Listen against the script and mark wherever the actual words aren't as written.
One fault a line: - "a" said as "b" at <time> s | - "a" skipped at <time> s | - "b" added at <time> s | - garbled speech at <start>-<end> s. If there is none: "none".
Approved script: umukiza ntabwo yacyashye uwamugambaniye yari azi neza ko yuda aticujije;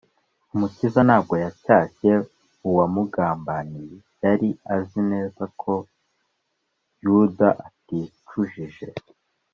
none